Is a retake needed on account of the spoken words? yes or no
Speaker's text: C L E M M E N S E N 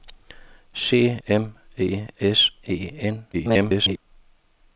yes